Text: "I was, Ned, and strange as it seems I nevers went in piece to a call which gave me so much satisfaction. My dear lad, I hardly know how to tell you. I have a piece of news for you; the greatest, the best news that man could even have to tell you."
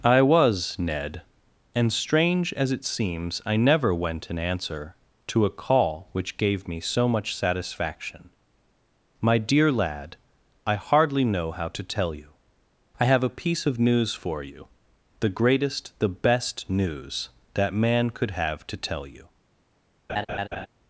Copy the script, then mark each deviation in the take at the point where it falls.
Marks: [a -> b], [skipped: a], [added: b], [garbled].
"I was, Ned, and strange as it seems I [nevers -> never] went in [piece -> answer] to a call which gave me so much satisfaction. My dear lad, I hardly know how to tell you. I have a piece of news for you; the greatest, the best news that man could [skipped: even] have to tell you."